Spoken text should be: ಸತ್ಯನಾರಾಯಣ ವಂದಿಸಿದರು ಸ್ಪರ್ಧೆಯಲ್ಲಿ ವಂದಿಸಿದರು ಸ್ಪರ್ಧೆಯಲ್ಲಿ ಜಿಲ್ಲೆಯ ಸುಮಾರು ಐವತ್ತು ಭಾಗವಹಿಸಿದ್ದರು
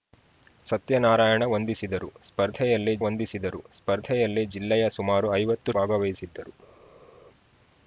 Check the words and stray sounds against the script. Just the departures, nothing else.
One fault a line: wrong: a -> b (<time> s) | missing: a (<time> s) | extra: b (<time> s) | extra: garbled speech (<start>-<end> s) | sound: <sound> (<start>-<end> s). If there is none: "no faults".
no faults